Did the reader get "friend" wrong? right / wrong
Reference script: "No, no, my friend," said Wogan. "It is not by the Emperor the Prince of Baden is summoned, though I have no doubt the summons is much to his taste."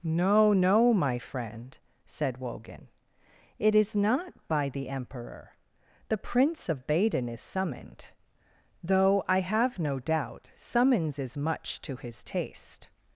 right